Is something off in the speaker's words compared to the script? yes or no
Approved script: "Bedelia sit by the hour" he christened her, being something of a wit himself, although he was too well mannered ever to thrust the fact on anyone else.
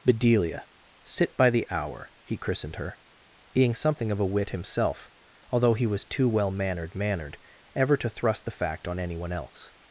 yes